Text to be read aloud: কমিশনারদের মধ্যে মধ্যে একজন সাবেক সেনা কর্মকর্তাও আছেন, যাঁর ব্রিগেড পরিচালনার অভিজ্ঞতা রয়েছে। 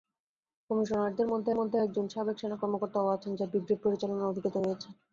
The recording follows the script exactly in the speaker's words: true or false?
true